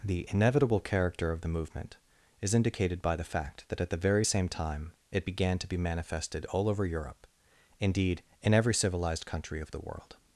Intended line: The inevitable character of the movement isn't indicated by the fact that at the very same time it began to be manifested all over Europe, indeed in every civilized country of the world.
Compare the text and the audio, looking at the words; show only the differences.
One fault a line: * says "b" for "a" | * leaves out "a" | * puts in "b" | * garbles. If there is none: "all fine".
* says "is" for "isn't"